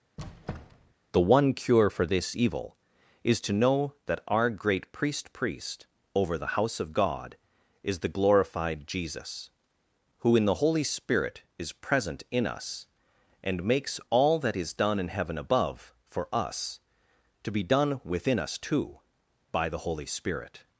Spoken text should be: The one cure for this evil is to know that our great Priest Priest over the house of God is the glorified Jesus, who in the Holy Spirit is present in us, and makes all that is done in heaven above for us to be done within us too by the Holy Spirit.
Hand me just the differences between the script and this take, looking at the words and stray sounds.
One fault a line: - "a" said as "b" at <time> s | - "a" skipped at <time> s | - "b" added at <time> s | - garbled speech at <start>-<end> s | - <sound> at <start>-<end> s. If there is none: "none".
- squeak at 0.2-0.9 s